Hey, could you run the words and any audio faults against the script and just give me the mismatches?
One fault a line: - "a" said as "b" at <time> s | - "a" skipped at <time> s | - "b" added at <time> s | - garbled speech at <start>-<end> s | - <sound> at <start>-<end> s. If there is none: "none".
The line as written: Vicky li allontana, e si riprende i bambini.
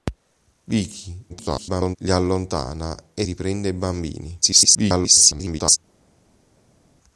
- garbled speech at 1.3-2.0 s
- "si" skipped at 3.3 s
- garbled speech at 4.4-5.8 s